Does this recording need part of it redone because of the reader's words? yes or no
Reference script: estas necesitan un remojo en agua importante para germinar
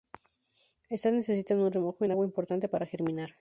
no